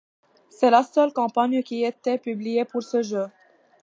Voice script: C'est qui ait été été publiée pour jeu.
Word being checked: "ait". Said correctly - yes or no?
yes